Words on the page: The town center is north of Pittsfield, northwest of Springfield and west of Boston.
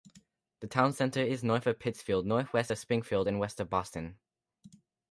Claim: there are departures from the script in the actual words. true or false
false